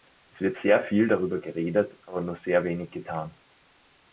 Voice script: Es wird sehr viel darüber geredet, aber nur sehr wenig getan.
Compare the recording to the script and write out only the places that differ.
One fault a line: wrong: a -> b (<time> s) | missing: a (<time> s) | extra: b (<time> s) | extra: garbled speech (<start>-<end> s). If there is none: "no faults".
no faults